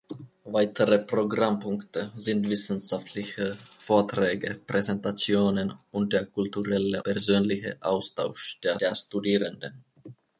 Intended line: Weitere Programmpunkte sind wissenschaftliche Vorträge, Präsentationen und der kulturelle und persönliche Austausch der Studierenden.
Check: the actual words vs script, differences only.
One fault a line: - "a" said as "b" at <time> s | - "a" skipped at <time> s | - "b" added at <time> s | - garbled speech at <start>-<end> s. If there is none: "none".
- "und" skipped at 7.0 s
- "der" added at 8.8 s